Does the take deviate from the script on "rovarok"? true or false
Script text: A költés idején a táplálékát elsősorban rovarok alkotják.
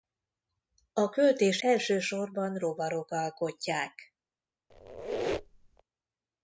false